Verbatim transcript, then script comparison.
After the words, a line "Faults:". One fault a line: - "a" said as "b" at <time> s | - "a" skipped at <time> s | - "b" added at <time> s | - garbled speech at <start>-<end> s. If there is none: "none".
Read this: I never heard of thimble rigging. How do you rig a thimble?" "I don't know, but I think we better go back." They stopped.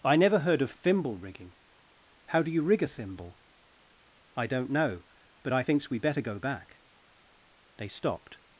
I never heard of thimble rigging. How do you rig a thimble?" "I don't know, but I thinks we better go back." They stopped.
Faults:
- "think" said as "thinks" at 5.6 s